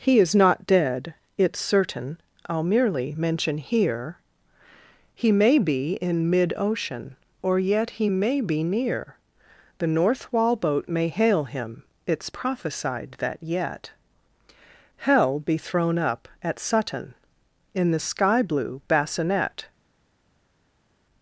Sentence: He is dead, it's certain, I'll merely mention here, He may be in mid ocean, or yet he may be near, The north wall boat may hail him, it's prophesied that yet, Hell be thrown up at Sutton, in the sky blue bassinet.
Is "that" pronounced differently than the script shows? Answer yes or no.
no